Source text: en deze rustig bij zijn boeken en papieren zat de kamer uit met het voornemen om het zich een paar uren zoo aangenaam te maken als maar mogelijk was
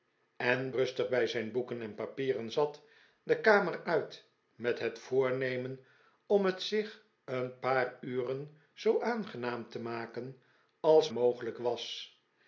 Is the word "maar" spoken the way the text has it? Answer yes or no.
no